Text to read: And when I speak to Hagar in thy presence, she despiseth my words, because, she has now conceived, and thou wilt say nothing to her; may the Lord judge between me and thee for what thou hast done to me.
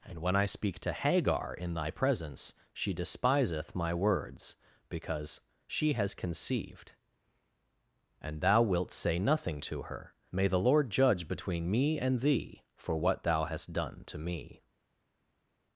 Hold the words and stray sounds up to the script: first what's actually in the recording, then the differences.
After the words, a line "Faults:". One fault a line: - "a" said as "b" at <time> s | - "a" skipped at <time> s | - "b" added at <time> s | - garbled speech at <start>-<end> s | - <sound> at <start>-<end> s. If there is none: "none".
And when I speak to Hagar in thy presence, she despiseth my words, because, she has conceived, and thou wilt say nothing to her; may the Lord judge between me and thee for what thou hast done to me.
Faults:
- "now" skipped at 6.1 s